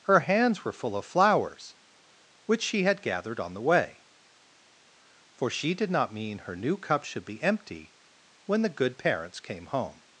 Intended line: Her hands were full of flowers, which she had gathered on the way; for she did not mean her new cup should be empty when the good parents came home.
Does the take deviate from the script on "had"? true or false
false